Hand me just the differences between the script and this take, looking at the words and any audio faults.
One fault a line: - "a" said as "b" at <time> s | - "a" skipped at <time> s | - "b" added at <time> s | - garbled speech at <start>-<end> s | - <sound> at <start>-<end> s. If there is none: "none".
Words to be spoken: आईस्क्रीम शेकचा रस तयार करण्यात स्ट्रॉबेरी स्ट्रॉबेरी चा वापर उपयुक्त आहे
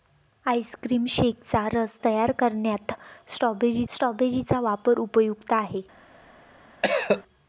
- cough at 6.8-7.2 s